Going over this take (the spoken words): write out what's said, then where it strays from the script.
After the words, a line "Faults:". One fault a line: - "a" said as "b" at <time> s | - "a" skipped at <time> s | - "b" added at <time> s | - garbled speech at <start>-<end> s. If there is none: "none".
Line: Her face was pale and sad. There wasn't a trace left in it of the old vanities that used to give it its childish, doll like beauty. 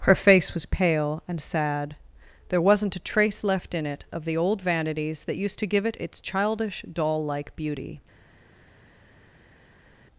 Her face was pale and sad. There wasn't a trace left in it of the old vanities that used to give it its childish, doll like beauty.
Faults:
none